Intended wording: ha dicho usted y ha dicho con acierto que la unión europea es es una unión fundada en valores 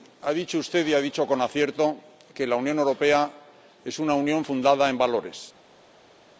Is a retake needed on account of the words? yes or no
yes